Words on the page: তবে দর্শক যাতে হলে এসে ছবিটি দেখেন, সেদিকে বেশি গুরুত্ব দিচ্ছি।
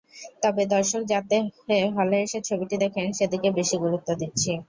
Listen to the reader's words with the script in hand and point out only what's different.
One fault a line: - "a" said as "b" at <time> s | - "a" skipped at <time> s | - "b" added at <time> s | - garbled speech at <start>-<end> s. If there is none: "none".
none